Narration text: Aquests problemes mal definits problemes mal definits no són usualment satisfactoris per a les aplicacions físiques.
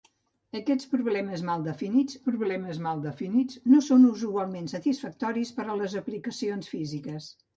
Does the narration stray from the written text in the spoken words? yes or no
no